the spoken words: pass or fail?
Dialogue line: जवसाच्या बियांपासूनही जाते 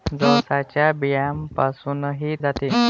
pass